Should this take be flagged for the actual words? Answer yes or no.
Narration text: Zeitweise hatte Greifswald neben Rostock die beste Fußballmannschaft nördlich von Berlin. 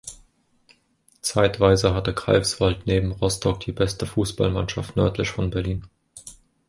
no